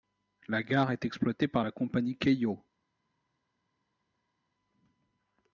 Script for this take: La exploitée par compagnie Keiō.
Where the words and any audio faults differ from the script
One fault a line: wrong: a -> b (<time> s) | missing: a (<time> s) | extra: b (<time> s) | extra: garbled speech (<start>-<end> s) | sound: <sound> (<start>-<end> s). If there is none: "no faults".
extra: gare est (0.6 s)
extra: la (1.6 s)